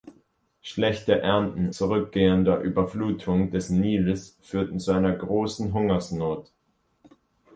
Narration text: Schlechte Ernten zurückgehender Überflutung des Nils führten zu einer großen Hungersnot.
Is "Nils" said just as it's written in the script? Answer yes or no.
yes